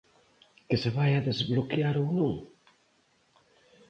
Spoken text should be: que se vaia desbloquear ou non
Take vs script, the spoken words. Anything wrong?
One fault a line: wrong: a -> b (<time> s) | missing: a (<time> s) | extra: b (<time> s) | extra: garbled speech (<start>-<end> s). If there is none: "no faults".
no faults